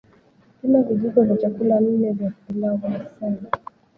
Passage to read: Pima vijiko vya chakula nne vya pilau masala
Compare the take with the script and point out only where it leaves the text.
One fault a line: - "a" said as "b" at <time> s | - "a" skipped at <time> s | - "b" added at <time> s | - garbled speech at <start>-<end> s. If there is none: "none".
none